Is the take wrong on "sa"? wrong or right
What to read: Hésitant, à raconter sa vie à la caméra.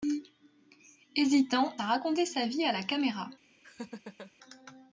right